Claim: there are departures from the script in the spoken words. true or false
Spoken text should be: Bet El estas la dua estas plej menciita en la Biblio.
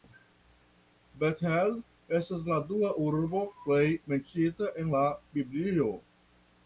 true